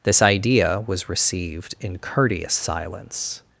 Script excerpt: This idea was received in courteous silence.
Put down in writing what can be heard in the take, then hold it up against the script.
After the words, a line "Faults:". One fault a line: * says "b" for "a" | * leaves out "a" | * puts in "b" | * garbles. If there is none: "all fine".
This idea was received in courteous silence.
Faults:
all fine